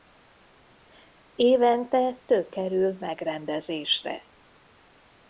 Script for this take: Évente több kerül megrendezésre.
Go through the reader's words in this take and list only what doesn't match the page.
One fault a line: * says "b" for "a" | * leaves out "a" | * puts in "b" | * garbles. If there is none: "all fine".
all fine